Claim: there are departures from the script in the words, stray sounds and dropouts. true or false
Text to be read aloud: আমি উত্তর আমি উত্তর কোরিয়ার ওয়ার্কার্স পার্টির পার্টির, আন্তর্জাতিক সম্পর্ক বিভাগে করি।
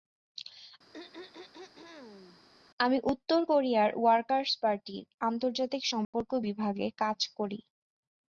true